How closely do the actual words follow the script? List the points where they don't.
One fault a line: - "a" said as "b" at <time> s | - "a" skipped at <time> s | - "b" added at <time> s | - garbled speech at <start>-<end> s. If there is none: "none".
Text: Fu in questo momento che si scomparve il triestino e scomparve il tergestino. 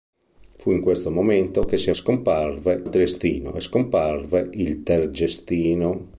none